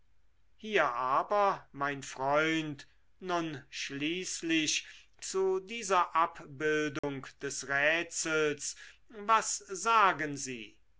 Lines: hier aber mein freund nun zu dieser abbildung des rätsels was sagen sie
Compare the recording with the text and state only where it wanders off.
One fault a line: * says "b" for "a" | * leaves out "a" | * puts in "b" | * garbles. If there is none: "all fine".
* puts in "schließlich"